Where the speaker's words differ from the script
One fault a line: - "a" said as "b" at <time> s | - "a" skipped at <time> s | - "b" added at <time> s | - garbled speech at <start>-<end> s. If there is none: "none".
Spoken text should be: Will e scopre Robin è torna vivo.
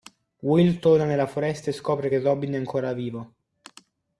- "torna nella foresta" added at 0.8 s
- "che" added at 2.1 s
- "torna" said as "ancora" at 2.6 s